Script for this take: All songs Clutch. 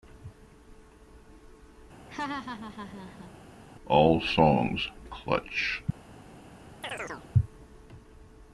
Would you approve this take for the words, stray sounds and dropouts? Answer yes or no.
no